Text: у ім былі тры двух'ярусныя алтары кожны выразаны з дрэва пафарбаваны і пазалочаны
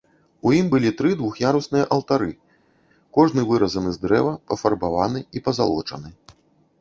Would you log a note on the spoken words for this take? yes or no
no